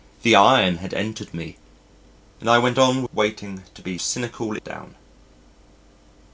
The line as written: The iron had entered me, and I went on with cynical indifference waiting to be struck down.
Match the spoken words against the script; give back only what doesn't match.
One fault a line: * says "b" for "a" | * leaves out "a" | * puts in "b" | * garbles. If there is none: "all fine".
* leaves out "with cynical indifference"
* says "cynical" for "struck"